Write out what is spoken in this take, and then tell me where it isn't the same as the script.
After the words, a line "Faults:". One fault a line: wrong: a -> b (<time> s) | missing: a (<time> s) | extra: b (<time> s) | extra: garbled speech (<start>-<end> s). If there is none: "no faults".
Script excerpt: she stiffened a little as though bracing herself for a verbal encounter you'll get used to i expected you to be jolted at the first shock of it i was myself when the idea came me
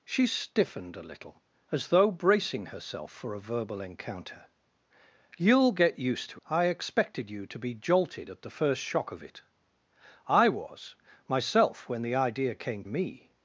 she stiffened a little as though bracing herself for a verbal encounter you'll get used to i expected you to be jolted at the first shock of it i was myself when the idea came me
Faults:
no faults